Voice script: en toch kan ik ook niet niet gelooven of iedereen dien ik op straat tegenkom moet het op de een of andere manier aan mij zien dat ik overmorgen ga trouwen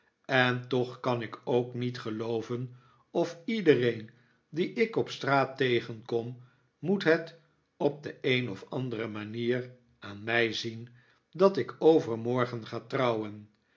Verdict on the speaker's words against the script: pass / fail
fail